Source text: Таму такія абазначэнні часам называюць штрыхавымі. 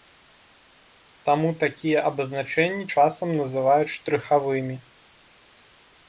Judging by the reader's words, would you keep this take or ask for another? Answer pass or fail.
pass